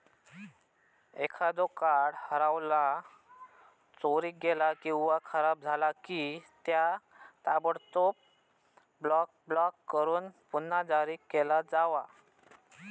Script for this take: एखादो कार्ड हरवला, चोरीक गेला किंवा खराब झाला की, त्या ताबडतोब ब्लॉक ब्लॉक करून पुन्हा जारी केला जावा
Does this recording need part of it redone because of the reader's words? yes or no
no